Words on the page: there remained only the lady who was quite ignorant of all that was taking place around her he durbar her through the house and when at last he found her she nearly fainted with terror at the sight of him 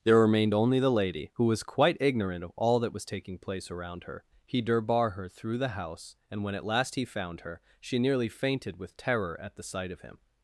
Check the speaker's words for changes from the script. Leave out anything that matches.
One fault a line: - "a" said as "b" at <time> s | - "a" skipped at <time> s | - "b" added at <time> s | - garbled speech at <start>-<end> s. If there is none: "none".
none